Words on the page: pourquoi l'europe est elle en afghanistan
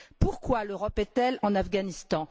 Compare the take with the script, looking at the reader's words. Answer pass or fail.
pass